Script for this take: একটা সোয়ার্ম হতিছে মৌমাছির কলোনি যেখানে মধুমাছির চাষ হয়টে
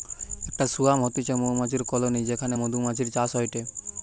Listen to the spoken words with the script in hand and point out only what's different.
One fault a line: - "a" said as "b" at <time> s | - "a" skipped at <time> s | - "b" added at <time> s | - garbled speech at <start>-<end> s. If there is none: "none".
none